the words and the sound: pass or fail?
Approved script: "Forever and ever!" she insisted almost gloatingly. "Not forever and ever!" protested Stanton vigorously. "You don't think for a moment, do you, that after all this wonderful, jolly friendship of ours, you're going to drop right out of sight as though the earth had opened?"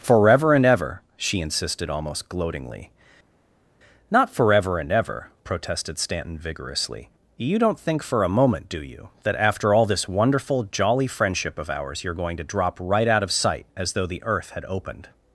pass